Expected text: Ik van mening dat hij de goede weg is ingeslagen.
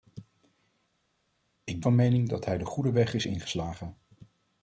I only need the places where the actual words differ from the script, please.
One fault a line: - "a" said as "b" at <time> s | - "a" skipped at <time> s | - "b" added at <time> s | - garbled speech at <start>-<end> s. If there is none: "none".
none